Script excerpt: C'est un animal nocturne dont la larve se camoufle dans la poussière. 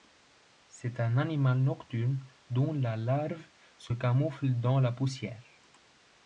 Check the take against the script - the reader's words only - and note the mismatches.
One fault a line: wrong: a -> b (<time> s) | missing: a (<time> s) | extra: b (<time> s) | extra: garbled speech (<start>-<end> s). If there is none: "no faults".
no faults